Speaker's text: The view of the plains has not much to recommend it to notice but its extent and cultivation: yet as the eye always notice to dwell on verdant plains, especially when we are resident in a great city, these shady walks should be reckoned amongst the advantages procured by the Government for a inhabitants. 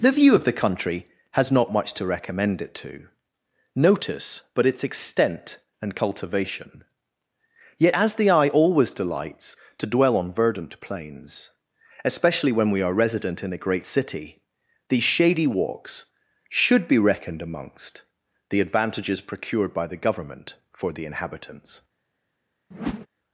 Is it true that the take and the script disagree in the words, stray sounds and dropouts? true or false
true